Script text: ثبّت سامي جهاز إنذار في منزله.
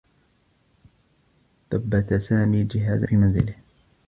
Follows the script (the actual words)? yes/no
no